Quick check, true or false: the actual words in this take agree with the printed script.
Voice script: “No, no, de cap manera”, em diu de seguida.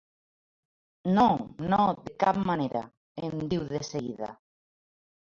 true